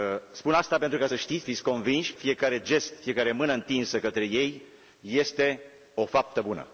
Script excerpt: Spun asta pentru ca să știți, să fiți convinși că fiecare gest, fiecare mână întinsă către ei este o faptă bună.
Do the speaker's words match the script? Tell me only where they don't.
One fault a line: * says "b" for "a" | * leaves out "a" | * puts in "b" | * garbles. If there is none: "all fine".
* leaves out "să"
* leaves out "că"